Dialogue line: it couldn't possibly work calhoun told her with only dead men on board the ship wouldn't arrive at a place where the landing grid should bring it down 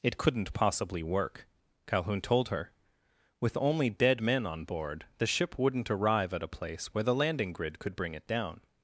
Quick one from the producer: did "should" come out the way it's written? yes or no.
no